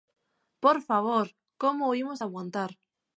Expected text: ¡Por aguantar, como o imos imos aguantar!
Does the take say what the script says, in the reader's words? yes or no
no